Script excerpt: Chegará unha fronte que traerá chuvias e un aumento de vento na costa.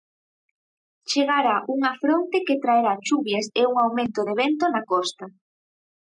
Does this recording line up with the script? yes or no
yes